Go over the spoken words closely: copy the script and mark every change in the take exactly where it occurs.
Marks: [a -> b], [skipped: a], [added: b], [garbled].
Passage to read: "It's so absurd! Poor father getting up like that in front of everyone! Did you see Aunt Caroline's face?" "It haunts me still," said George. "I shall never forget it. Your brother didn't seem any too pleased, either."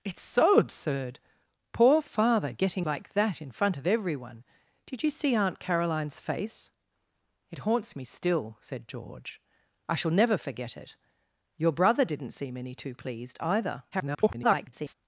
"It's so absurd! Poor father getting [skipped: up] like that in front of everyone! Did you see Aunt Caroline's face?" "It haunts me still," said George. "I shall never forget it. Your brother didn't seem any too pleased, either." [garbled]